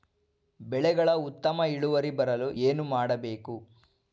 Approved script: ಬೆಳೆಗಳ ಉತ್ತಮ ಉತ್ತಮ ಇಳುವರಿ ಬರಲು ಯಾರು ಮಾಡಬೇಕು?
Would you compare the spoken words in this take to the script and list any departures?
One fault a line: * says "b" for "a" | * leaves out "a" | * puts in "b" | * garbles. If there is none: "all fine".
* leaves out "ಉತ್ತಮ"
* says "ಏನು" for "ಯಾರು"